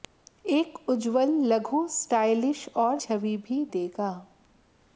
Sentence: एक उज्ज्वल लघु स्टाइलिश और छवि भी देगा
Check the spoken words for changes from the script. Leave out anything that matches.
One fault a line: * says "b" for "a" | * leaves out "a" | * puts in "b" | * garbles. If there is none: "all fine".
all fine